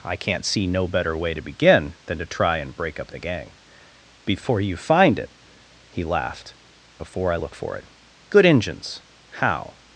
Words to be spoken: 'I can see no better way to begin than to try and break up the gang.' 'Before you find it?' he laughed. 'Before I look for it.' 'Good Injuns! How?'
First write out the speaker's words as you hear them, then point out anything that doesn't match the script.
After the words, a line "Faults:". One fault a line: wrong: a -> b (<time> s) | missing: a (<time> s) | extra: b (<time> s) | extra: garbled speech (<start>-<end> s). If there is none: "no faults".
'I can't see no better way to begin than to try and break up the gang.' 'Before you find it?' he laughed. 'Before I look for it.' 'Good Injuns! How?'
Faults:
wrong: can -> can't (0.1 s)